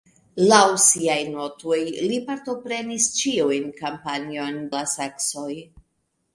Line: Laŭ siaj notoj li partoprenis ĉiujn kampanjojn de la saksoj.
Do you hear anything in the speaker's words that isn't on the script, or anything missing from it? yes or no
yes